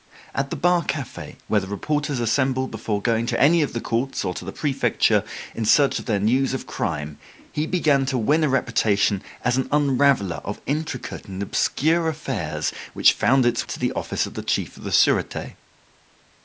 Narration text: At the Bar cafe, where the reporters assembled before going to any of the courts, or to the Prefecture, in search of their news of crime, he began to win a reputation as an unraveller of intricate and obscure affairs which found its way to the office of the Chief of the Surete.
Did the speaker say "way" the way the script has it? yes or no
no